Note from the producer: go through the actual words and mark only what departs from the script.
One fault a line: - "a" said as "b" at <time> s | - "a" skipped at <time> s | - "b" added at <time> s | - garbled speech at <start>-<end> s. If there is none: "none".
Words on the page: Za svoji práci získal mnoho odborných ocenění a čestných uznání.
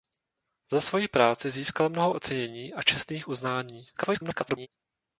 - "odborných" skipped at 2.1 s
- garbled speech at 3.9-4.7 s